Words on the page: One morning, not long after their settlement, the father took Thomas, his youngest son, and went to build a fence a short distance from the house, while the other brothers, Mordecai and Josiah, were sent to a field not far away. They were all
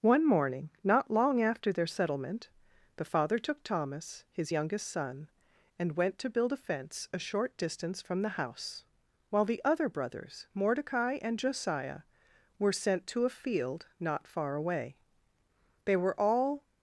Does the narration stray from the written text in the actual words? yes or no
no